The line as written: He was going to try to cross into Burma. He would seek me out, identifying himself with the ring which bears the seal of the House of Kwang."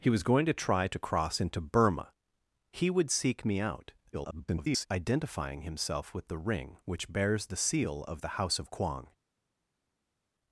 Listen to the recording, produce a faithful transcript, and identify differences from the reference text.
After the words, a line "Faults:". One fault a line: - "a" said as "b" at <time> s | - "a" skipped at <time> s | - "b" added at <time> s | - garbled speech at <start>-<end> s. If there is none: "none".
He was going to try to cross into Burma. He would seek me out, [garbled] identifying himself with the ring which bears the seal of the House of Kwang."
Faults:
- garbled speech at 4.1-4.9 s